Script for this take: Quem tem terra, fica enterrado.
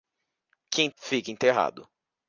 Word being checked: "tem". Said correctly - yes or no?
no